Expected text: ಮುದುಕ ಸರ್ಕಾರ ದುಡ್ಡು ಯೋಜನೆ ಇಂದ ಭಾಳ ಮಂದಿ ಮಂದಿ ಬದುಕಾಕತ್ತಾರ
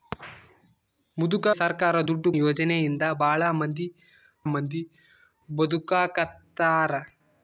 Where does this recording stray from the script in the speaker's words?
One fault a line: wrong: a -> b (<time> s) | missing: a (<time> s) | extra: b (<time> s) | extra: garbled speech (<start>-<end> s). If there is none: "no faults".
no faults